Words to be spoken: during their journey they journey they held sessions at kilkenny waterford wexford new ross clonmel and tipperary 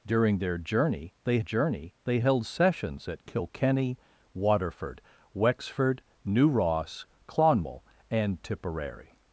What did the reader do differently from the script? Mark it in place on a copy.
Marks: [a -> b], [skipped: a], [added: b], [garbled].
during their journey they journey they held sessions at kilkenny waterford wexford new ross clonmel and tipperary